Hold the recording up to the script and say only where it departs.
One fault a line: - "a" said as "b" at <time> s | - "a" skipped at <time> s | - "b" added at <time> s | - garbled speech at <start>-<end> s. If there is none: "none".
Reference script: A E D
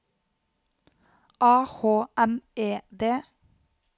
- "H M" added at 1.6 s